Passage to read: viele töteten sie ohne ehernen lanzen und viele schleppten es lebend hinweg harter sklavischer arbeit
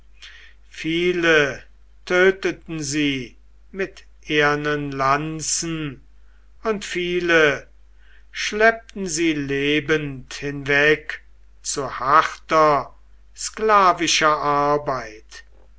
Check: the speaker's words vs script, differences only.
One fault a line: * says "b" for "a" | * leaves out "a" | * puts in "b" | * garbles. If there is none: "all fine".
* says "mit" for "ohne"
* says "sie" for "es"
* puts in "zu"